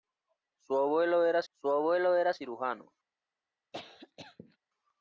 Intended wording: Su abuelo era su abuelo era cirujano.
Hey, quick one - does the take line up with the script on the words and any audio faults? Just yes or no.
no